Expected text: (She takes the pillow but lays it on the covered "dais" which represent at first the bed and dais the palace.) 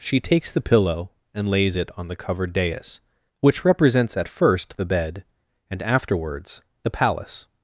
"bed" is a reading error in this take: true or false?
false